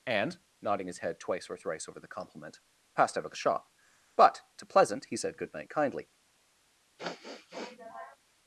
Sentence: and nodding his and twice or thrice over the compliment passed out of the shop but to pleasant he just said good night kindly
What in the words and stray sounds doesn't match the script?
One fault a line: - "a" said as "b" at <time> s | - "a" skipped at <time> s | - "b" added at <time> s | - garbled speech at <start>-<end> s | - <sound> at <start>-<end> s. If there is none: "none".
- "and" said as "head" at 1.0 s
- "just" skipped at 5.2 s
- sniff at 7.0-8.2 s